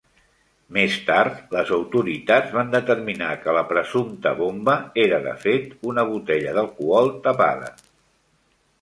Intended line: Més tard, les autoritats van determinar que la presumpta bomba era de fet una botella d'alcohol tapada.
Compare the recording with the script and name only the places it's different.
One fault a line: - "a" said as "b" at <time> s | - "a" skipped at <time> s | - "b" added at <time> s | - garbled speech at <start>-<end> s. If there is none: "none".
none